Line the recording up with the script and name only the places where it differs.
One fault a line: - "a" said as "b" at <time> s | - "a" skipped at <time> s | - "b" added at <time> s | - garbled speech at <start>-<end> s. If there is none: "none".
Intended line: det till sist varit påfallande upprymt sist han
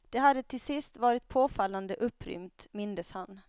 - "hade" added at 0.2 s
- "sist" said as "mindes" at 2.7 s